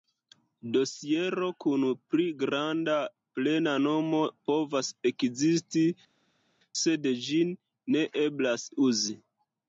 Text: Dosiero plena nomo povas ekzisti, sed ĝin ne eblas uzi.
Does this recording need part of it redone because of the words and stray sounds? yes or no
yes